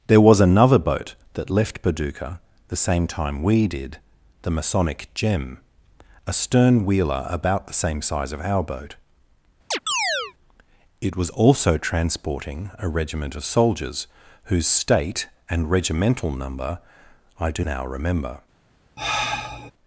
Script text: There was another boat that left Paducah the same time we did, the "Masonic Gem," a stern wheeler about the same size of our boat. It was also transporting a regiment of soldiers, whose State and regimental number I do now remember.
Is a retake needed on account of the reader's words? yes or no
no